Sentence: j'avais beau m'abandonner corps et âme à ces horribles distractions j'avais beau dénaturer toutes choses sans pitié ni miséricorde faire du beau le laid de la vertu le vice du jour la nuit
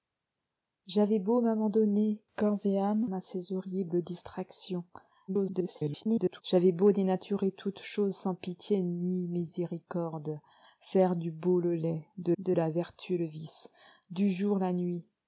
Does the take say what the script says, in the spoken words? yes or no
no